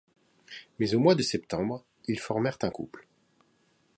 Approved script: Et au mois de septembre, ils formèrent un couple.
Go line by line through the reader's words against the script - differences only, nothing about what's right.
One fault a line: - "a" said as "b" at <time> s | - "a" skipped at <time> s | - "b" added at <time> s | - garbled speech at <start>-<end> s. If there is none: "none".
- "Et" said as "Mais" at 0.8 s